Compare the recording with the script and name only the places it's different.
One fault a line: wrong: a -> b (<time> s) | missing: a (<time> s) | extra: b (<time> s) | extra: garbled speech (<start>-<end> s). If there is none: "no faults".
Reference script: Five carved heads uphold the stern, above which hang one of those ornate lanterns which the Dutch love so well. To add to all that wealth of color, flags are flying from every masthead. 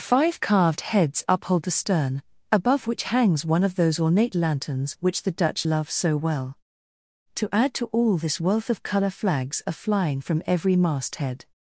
wrong: hang -> hangs (3.0 s)
wrong: that -> this (8.2 s)